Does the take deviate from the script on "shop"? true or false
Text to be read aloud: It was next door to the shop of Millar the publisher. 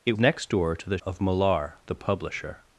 true